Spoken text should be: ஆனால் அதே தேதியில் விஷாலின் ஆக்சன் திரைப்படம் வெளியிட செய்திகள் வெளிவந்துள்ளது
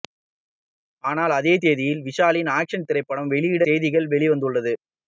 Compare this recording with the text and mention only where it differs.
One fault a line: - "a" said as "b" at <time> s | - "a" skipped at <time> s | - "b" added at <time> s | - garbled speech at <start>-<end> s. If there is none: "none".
none